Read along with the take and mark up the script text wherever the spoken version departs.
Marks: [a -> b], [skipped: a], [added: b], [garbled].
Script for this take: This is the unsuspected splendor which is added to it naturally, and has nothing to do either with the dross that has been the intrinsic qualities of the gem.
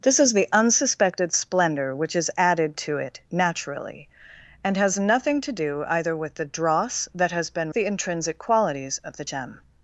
This is the unsuspected splendor which is added to it naturally, and has nothing to do either with the dross that has been the intrinsic qualities of the gem.